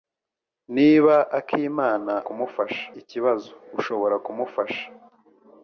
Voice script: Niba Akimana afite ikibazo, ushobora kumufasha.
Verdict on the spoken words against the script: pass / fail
fail